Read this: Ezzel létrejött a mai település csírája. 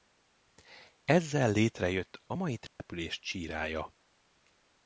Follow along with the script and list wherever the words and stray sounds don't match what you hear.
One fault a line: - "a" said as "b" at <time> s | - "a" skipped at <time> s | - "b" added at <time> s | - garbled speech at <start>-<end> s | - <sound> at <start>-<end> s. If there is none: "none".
- dropout at 2.7-2.8 s